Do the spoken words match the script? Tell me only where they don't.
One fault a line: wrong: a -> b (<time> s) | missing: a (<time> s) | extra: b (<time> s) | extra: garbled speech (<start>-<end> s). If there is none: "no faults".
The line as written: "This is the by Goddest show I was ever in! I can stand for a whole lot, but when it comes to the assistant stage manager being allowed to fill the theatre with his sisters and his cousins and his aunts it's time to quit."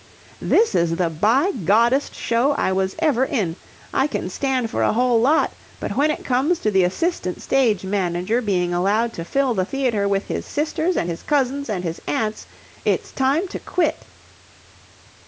no faults